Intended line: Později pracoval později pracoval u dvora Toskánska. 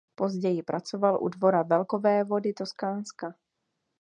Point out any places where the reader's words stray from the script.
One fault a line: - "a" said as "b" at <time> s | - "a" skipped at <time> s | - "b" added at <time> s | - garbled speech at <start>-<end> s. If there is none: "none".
- "později pracoval" skipped at 1.2 s
- "velkovévody" added at 1.6 s